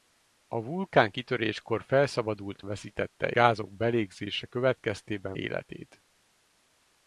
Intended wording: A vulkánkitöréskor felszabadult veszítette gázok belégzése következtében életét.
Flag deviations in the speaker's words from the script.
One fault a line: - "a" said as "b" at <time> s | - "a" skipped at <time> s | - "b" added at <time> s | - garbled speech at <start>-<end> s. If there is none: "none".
none